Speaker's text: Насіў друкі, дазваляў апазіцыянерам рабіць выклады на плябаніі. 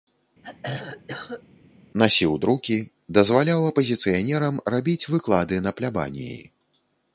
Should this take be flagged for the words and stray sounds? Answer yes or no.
yes